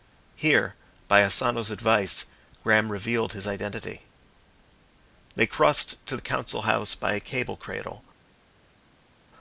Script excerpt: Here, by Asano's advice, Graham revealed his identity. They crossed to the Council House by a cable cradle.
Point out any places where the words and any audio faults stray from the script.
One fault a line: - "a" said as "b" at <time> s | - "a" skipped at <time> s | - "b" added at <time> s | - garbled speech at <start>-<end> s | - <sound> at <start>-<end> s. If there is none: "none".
none